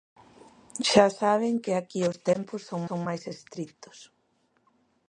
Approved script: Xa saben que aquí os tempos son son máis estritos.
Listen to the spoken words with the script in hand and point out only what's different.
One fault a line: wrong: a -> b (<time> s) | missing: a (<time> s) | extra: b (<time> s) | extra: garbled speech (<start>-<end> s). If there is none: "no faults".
no faults